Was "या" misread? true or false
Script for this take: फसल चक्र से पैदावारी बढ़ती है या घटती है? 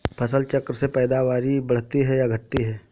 false